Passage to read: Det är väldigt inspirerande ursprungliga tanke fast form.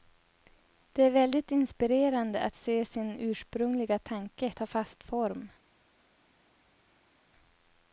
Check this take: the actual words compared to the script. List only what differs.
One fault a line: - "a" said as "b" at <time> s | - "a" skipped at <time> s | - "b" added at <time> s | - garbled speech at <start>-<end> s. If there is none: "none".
- "att se sin" added at 2.4 s
- "ta" added at 4.5 s